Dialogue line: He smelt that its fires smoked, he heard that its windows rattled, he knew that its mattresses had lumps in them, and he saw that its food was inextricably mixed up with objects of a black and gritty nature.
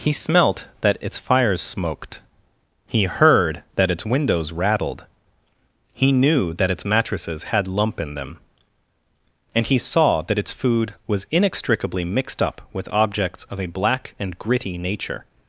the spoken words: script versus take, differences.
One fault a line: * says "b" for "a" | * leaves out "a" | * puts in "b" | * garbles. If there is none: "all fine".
* says "lump" for "lumps"